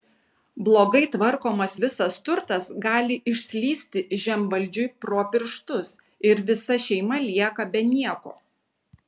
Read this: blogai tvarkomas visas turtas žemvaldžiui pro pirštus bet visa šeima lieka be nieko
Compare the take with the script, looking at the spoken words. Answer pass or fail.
fail